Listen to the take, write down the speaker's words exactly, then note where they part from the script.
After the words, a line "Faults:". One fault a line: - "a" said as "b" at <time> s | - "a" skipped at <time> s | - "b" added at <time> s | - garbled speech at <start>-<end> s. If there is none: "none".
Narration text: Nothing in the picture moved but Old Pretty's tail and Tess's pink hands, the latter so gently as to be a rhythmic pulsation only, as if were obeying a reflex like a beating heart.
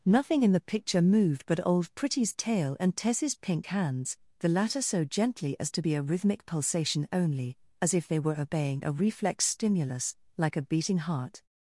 Nothing in the picture moved but Old Pretty's tail and Tess's pink hands, the latter so gently as to be a rhythmic pulsation only, as if they were obeying a reflex stimulus, like a beating heart.
Faults:
- "they" added at 8.1 s
- "stimulus" added at 9.5 s